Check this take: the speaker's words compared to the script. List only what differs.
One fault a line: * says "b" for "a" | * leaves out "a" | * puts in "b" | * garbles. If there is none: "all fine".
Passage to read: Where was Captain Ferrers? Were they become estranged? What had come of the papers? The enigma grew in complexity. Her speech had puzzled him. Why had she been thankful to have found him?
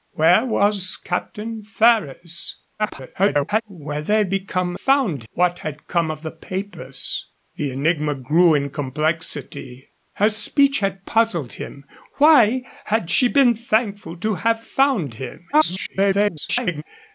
* garbles
* says "found" for "estranged"
* garbles